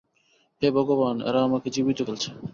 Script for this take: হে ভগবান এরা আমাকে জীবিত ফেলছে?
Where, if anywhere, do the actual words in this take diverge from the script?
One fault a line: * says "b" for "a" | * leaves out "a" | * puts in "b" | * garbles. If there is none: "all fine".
all fine